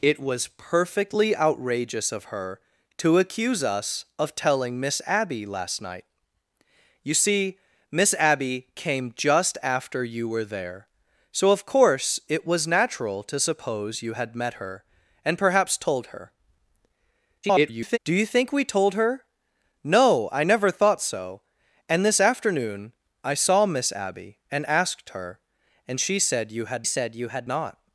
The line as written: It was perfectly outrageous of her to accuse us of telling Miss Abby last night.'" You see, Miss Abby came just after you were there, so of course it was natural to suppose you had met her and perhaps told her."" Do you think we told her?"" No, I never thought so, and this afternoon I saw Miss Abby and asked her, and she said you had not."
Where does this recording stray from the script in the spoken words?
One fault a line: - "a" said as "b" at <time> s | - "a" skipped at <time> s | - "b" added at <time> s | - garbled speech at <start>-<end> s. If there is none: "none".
- garbled speech at 17.4-18.0 s
- "said you had" added at 26.9 s